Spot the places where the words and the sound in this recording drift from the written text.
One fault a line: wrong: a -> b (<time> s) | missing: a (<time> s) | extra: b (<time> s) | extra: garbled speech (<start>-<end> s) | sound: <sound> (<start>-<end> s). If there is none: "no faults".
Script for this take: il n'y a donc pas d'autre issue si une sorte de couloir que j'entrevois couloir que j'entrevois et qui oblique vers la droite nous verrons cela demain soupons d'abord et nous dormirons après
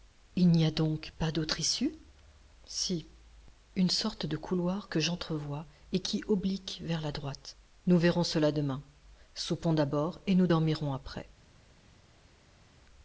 missing: couloir que j'entrevois (5.7 s)